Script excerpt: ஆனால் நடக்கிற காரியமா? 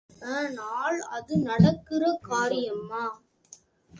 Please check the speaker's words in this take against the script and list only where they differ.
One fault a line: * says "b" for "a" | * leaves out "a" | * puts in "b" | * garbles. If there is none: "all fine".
* puts in "அது"